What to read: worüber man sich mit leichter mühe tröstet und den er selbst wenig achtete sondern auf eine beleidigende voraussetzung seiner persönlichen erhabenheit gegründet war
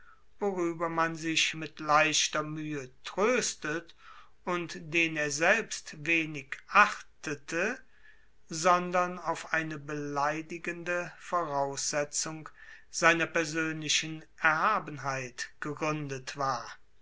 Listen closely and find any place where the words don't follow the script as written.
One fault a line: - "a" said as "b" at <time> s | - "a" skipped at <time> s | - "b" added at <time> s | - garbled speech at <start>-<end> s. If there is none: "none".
none